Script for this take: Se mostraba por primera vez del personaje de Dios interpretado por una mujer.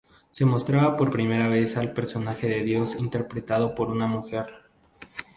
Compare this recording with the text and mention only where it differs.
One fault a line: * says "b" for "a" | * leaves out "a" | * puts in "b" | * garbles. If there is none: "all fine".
* says "al" for "del"